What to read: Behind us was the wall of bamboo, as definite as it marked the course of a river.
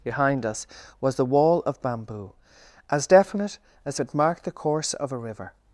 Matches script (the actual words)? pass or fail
pass